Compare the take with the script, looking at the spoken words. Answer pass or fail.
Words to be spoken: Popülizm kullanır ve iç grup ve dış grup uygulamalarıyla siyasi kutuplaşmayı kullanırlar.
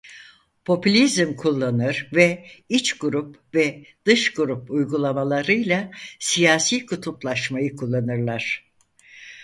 pass